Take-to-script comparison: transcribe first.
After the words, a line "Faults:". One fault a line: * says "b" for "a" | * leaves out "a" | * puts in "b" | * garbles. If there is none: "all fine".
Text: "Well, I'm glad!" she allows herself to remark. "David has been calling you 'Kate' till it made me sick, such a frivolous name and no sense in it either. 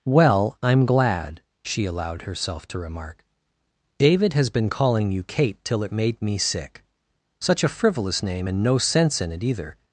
"Well, I'm glad!" she allowed herself to remark. "David has been calling you 'Kate' till it made me sick, such a frivolous name and no sense in it either.
Faults:
* says "allowed" for "allows"